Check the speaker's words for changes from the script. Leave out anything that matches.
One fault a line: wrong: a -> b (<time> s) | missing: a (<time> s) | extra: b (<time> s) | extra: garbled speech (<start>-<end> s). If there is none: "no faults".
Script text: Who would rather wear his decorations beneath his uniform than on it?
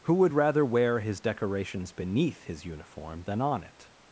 no faults